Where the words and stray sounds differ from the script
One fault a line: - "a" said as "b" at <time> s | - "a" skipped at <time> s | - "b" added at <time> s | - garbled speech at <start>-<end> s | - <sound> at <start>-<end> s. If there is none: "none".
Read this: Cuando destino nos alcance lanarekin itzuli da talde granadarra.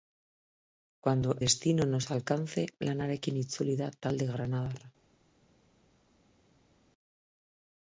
none